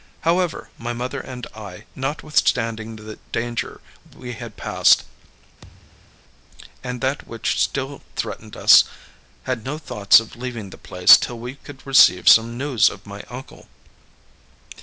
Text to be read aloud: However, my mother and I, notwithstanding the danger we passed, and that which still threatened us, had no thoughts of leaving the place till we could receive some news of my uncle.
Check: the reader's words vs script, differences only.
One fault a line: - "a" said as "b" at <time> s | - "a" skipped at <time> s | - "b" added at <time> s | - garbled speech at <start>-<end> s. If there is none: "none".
- "had" added at 4.3 s